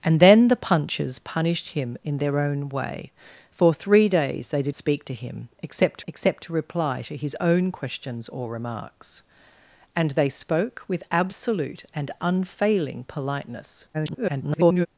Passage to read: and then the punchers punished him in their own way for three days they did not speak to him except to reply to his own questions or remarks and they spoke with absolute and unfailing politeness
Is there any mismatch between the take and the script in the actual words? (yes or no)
yes